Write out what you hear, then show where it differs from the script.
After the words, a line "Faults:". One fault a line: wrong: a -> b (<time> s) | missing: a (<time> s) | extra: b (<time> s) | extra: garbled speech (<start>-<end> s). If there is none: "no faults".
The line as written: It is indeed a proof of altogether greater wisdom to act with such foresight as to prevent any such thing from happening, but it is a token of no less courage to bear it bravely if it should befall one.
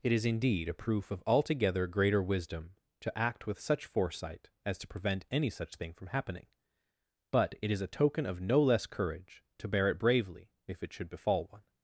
It is indeed a proof of altogether greater wisdom to act with such foresight as to prevent any such thing from happening, but it is a token of no less courage to bear it bravely if it should befall one.
Faults:
no faults